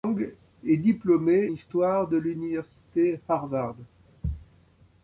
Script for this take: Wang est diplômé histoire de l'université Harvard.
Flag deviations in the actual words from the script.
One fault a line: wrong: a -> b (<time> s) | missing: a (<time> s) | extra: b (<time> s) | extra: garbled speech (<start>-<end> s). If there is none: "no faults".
no faults